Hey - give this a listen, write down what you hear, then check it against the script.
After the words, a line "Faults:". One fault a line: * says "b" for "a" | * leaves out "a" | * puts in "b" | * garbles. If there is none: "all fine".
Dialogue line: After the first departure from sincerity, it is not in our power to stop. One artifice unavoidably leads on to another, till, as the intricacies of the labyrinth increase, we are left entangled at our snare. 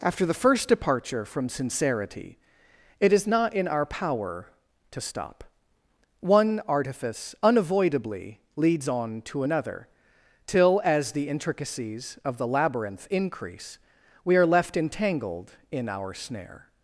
After the first departure from sincerity, it is not in our power to stop. One artifice unavoidably leads on to another, till, as the intricacies of the labyrinth increase, we are left entangled in our snare.
Faults:
* says "in" for "at"